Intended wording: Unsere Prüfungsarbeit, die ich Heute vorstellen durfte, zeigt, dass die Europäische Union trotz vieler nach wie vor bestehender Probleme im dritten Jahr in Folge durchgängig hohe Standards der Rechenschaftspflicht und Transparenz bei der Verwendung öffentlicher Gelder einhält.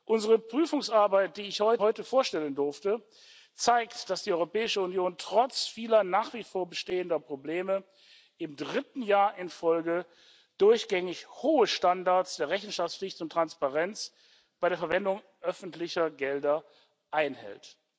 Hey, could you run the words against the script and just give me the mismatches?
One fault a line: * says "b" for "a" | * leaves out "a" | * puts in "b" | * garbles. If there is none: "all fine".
all fine